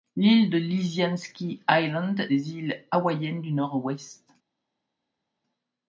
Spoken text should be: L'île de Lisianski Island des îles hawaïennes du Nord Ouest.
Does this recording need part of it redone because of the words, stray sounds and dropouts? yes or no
no